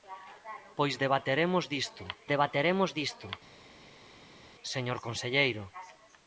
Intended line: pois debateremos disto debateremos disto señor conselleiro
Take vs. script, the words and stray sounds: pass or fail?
pass